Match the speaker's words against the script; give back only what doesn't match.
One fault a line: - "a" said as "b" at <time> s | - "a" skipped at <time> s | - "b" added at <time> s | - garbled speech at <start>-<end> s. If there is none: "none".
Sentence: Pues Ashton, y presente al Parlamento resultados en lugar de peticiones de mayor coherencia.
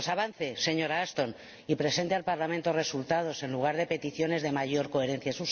- "avance señora" added at 0.1 s